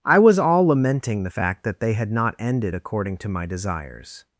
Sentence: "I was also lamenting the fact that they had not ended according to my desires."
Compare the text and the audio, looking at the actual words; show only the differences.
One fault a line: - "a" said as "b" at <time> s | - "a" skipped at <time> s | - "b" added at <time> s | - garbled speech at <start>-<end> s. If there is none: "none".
- "also" said as "all" at 0.4 s